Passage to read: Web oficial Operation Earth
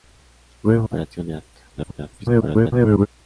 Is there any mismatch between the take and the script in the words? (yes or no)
yes